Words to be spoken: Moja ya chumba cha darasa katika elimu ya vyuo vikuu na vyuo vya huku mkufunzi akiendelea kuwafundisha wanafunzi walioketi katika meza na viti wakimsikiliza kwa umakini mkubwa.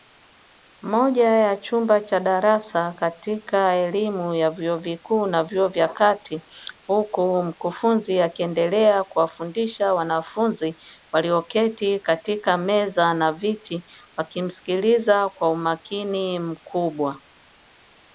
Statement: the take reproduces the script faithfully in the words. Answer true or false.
false